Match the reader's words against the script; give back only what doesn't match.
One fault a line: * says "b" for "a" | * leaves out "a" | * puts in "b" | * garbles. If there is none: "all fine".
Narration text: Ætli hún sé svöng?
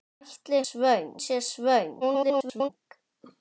* says "svöng" for "hún"
* garbles